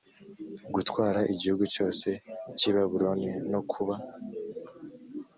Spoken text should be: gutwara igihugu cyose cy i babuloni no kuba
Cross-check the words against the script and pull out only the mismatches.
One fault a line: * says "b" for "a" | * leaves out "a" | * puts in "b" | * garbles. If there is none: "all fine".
all fine